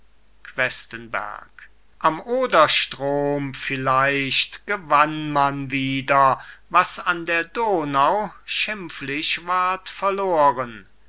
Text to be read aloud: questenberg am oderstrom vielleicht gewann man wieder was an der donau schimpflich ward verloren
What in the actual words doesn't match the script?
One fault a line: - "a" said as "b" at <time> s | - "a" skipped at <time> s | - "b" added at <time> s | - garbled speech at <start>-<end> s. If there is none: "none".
none